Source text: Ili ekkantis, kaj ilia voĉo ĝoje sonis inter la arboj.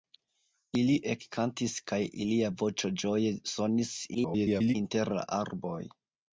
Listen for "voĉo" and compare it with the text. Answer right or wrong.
right